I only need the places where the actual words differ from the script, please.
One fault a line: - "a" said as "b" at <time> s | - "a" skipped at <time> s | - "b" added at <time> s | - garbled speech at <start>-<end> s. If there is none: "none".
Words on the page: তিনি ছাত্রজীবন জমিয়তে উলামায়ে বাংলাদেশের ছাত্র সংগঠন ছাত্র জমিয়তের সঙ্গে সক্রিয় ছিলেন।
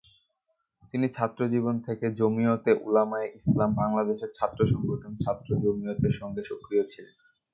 - "থেকে" added at 1.9 s
- "ইসলাম" added at 3.4 s